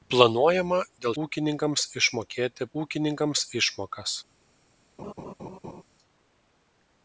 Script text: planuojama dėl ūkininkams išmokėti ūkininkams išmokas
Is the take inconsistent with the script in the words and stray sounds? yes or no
yes